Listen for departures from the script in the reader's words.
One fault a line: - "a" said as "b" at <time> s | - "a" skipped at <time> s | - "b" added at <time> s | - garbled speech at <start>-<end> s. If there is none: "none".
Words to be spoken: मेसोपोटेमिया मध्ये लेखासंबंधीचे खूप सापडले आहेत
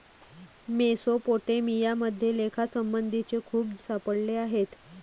none